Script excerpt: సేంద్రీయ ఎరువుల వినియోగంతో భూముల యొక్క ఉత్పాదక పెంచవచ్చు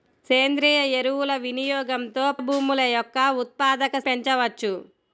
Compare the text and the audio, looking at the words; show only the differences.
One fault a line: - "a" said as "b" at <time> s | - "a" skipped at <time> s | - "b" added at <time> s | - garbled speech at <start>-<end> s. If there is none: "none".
none